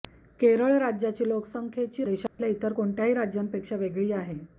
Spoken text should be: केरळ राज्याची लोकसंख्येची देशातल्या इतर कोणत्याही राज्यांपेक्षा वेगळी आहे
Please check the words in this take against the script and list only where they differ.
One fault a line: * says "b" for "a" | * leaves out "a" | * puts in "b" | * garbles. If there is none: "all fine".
all fine